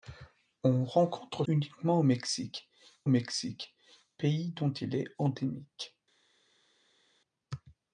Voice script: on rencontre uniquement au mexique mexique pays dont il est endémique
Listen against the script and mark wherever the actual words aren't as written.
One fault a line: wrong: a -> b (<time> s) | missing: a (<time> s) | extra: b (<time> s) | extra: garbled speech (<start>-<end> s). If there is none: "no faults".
no faults